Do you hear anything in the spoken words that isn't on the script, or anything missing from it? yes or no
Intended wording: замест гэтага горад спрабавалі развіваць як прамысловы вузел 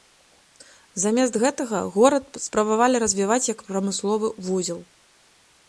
no